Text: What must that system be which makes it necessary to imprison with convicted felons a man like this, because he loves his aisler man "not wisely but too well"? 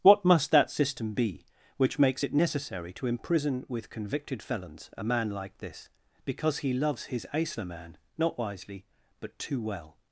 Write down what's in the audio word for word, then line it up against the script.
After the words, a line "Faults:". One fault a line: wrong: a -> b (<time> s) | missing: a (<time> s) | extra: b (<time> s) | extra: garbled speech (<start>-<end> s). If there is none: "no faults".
What must that system be which makes it necessary to imprison with convicted felons a man like this, because he loves his aisler man "not wisely but too well"?
Faults:
no faults